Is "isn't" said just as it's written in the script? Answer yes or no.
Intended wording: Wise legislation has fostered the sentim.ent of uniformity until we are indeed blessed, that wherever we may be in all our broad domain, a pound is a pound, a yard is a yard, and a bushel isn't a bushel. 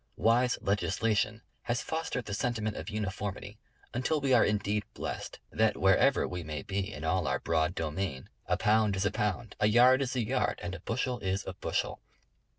no